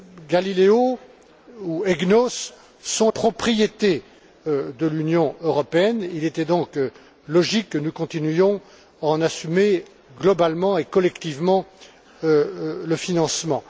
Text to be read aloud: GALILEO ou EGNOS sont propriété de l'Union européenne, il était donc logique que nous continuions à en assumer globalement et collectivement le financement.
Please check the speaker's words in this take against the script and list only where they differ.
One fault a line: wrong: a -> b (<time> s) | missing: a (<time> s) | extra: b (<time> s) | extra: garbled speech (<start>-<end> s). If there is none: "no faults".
no faults